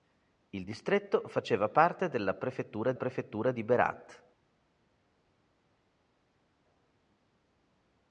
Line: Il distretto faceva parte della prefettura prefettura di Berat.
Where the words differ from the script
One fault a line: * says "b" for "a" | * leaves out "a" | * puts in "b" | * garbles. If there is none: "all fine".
all fine